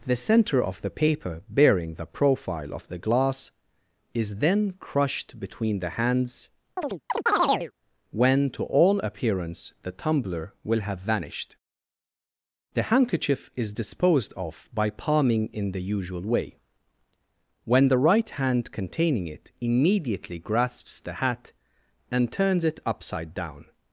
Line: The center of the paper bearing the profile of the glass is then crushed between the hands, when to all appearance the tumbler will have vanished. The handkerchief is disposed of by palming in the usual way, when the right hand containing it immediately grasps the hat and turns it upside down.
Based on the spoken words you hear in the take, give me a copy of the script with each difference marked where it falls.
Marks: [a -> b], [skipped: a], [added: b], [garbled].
The center of the paper bearing the profile of the glass is then crushed between the hands, when to all appearance the tumbler will have vanished. The handkerchief is disposed of by palming in the usual way, when the right hand containing it immediately grasps the hat and turns it upside down.